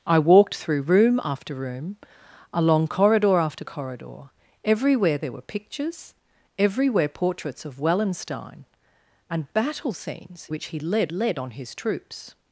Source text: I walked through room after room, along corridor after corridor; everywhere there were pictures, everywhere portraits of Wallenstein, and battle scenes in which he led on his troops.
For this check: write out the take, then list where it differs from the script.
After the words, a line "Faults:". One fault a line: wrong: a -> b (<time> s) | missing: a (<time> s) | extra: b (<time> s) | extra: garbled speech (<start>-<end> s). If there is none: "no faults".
I walked through room after room, along corridor after corridor; everywhere there were pictures, everywhere portraits of Wallenstein, and battle scenes which he led led on his troops.
Faults:
missing: in (10.5 s)
extra: led (11.1 s)